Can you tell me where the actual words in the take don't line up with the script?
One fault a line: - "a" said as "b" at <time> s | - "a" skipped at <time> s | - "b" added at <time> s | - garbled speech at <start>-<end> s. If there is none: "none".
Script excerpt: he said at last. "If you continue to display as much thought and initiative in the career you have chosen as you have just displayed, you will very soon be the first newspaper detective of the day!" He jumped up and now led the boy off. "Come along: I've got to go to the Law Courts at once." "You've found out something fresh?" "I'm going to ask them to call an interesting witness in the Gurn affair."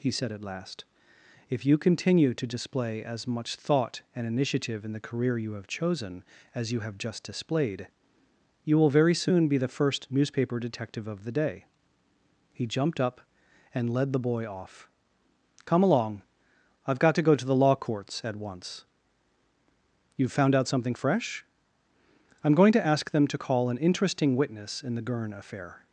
- "now" skipped at 13.9 s